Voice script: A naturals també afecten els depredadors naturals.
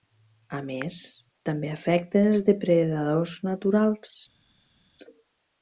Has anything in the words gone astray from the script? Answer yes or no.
yes